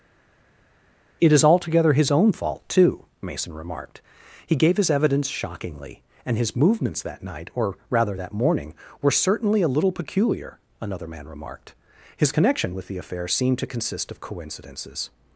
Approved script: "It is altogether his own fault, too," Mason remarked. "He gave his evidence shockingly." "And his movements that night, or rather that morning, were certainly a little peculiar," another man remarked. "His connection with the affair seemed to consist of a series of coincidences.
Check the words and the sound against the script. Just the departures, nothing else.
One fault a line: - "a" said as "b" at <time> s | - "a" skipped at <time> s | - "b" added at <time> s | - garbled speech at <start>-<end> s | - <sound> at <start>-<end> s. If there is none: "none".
- "a series of" skipped at 14.2 s